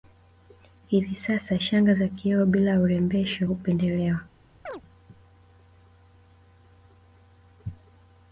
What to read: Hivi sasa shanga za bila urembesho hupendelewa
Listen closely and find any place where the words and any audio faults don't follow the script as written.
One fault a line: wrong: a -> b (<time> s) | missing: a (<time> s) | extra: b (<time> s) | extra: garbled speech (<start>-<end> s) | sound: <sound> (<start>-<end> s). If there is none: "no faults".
extra: kioo (2.1 s)
sound: chirp (4.7-4.8 s)